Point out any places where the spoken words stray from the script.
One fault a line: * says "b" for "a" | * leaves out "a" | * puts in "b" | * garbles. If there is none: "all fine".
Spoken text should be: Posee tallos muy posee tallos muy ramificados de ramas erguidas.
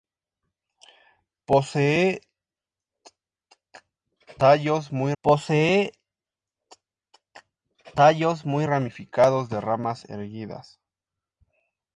all fine